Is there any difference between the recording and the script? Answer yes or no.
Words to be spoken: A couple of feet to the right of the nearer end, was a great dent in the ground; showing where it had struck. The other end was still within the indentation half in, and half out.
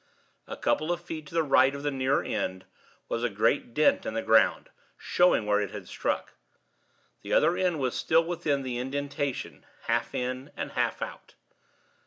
no